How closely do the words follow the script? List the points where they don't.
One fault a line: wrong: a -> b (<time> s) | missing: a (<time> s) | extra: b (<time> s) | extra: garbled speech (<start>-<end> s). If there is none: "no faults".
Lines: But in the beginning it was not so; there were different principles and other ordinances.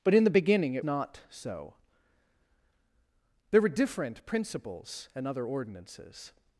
missing: was (0.8 s)